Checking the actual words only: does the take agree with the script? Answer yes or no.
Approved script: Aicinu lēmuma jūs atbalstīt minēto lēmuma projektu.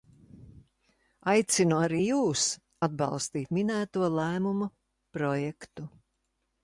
no